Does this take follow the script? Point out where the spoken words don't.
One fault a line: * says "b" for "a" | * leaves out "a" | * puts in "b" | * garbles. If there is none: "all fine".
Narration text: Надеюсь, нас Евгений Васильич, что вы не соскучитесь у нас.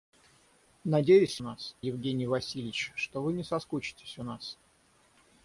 all fine